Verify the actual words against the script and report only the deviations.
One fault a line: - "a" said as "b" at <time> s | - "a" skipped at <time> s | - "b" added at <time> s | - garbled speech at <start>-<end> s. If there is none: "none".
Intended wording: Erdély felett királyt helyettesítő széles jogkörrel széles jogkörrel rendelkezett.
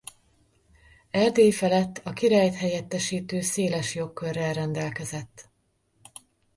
- "a" added at 2.0 s
- "széles jogkörrel" skipped at 4.5 s